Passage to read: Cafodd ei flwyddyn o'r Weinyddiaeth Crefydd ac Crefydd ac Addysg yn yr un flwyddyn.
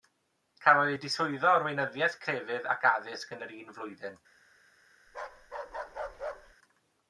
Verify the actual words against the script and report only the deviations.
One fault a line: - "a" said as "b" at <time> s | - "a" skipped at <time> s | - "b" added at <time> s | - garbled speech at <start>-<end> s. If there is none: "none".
- "flwyddyn" said as "diswyddo" at 1.0 s
- "Crefydd ac" skipped at 2.9 s